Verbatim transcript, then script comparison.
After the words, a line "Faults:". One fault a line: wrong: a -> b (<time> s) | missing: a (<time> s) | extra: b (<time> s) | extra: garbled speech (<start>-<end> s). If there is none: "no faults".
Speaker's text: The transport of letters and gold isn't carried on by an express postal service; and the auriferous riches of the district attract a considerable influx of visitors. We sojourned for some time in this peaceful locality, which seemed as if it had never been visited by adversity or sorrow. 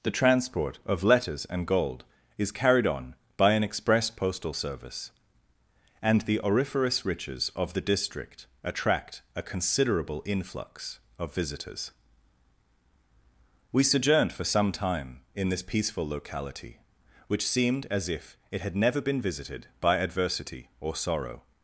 The transport of letters and gold is carried on by an express postal service; and the auriferous riches of the district attract a considerable influx of visitors. We sojourned for some time in this peaceful locality, which seemed as if it had never been visited by adversity or sorrow.
Faults:
wrong: isn't -> is (2.4 s)